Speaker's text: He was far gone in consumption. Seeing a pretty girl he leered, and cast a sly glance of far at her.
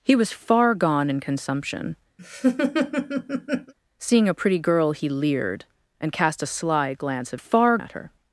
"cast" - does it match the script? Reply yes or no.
yes